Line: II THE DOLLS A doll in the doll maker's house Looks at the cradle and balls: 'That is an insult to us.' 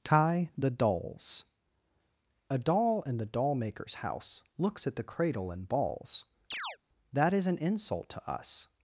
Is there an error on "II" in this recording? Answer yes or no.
yes